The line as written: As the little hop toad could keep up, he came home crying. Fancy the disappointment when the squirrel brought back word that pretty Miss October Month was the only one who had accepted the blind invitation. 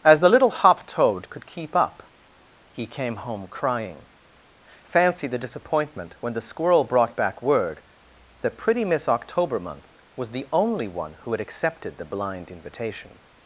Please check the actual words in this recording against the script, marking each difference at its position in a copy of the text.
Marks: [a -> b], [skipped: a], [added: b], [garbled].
As the little hop toad could keep up, he came home crying. Fancy the disappointment when the squirrel brought back word that pretty Miss October Month was the only one who had accepted the blind invitation.